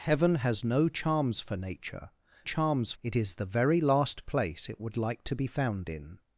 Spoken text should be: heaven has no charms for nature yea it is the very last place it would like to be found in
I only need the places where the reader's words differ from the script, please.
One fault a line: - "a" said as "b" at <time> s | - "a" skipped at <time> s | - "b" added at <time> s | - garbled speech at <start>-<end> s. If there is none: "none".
- "yea" said as "charms" at 2.4 s